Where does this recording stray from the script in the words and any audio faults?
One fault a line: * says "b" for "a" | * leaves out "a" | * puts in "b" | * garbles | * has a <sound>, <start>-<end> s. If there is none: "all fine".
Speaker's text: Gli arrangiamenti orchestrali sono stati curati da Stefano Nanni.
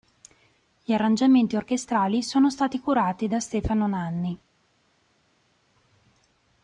all fine